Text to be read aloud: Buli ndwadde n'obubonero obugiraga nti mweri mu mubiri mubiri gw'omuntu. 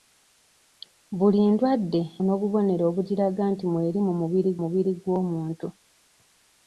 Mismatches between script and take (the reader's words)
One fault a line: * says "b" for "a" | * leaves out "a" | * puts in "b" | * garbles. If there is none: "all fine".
all fine